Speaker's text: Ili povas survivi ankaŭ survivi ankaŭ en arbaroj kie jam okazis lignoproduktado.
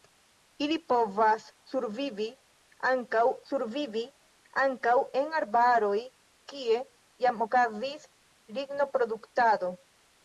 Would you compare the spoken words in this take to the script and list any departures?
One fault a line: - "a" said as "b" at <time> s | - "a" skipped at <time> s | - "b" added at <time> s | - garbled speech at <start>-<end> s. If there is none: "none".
none